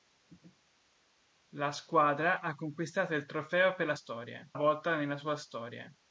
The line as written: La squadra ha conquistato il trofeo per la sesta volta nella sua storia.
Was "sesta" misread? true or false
true